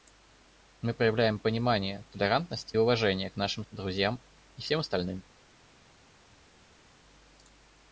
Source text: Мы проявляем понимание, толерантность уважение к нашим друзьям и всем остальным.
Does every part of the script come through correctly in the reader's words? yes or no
yes